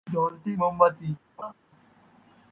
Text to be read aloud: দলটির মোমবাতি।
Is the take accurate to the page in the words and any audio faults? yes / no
no